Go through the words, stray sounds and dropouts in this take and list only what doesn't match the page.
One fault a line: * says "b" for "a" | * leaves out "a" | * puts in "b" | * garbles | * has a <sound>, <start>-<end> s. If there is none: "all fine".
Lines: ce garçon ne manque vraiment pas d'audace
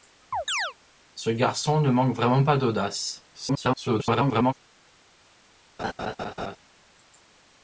* has a chirp, 0.3-0.7 s
* garbles
* has a laugh, 5.8-6.6 s